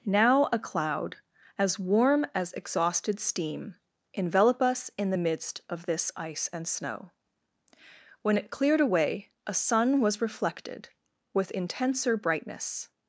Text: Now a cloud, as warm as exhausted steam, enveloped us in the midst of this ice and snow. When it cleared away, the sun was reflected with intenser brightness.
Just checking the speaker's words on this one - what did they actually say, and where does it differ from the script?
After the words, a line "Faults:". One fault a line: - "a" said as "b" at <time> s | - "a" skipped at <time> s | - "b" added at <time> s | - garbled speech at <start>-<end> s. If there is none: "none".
Now a cloud, as warm as exhausted steam, envelop us in the midst of this ice and snow. When it cleared away, a sun was reflected with intenser brightness.
Faults:
- "enveloped" said as "envelop" at 4.1 s
- "the" said as "a" at 9.5 s